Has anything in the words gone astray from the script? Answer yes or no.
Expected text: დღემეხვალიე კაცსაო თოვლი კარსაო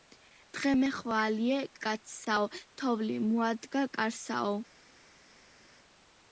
yes